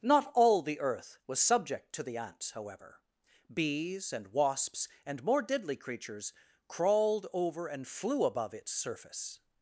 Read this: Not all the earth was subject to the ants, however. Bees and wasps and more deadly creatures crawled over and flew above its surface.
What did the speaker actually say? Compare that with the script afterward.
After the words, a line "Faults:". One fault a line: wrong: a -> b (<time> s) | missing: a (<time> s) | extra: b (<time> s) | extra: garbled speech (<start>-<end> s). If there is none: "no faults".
Not all the earth was subject to the ants, however. Bees and wasps and more deadly creatures crawled over and flew above its surface.
Faults:
no faults